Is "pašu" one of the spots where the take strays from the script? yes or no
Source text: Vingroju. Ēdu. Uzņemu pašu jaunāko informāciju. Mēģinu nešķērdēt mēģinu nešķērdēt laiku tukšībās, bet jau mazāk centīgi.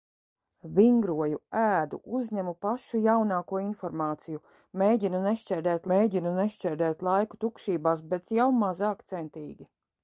no